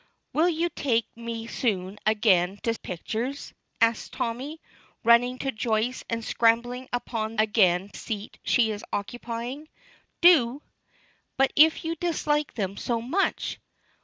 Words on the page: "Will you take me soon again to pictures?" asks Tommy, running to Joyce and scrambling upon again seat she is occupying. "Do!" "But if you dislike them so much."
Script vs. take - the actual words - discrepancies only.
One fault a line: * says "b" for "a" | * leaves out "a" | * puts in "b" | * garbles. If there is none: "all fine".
all fine